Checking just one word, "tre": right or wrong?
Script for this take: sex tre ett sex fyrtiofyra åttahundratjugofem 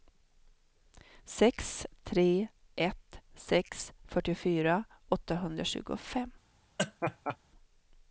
right